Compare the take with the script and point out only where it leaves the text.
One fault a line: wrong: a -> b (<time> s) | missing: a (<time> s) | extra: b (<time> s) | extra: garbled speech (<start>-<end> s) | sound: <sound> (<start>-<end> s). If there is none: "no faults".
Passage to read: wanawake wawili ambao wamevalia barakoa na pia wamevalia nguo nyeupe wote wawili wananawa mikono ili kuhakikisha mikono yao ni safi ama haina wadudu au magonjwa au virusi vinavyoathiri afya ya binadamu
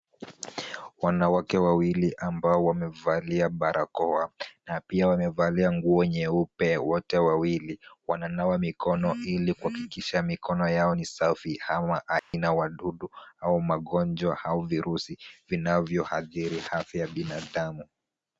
sound: dropout (12.2-12.3 s)